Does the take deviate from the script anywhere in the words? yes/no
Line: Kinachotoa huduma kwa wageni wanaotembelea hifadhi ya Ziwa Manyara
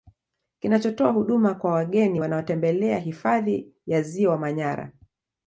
no